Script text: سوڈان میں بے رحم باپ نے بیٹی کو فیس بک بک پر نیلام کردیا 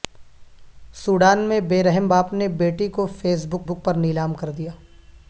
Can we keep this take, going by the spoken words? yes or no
yes